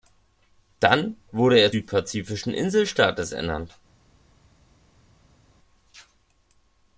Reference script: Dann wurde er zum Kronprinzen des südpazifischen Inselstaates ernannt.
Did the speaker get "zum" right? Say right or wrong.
wrong